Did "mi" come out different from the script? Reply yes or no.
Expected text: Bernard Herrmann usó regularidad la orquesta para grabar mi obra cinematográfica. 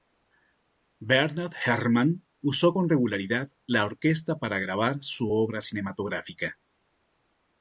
yes